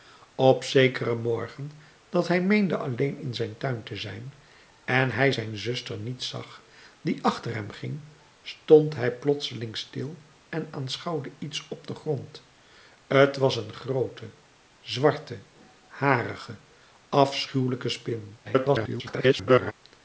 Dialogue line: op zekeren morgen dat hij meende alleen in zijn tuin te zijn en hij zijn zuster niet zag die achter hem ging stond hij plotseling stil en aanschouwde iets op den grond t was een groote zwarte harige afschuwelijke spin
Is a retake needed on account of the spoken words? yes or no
yes